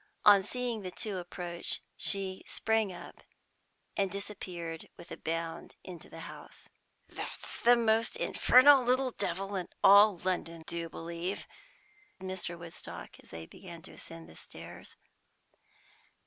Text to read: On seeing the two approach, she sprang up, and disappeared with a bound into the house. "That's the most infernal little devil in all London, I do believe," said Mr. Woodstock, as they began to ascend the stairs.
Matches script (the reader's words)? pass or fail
fail